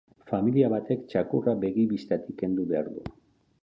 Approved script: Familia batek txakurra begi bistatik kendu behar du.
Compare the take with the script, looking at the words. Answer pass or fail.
pass